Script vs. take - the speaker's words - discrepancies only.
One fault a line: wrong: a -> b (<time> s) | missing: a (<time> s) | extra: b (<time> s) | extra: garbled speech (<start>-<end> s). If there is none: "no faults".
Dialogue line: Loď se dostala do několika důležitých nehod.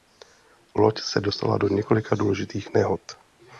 no faults